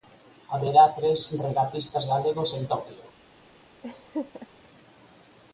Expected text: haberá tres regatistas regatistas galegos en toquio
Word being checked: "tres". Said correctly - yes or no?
yes